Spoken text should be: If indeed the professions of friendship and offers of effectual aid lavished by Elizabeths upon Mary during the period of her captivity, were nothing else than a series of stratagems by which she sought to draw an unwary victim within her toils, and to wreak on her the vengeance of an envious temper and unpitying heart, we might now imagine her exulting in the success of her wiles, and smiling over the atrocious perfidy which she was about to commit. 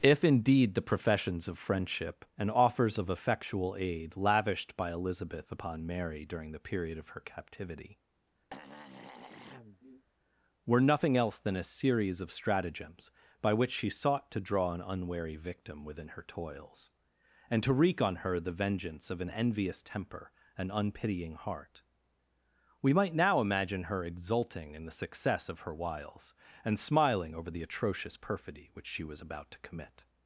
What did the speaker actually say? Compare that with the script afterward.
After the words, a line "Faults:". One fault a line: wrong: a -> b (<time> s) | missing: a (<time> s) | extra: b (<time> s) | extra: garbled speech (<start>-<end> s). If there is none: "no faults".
If indeed the professions of friendship and offers of effectual aid lavished by Elizabeth upon Mary during the period of her captivity, were nothing else than a series of stratagems by which she sought to draw an unwary victim within her toils, and to wreak on her the vengeance of an envious temper and unpitying heart, we might now imagine her exulting in the success of her wiles, and smiling over the atrocious perfidy which she was about to commit.
Faults:
wrong: Elizabeths -> Elizabeth (4.9 s)